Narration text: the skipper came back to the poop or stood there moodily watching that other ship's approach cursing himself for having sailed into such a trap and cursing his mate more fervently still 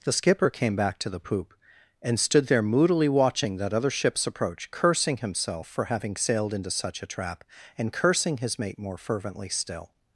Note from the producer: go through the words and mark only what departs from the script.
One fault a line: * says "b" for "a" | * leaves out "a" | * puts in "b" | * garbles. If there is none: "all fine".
* says "and" for "or"